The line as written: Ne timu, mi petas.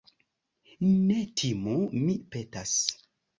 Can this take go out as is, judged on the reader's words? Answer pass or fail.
pass